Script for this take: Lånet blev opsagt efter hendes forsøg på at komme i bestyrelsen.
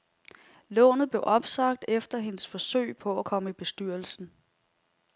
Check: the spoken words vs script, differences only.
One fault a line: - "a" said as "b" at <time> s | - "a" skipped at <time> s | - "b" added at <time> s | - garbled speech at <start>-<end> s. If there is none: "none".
none